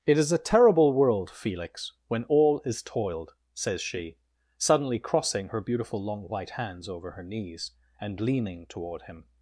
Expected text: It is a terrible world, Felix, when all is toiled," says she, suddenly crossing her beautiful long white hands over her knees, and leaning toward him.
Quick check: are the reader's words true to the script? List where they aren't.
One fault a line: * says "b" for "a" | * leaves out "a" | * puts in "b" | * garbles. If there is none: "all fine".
all fine